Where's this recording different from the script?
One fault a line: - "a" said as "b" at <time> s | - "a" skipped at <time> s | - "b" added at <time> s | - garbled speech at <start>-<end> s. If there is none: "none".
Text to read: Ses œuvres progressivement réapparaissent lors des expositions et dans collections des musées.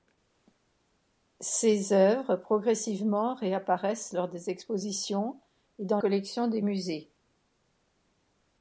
none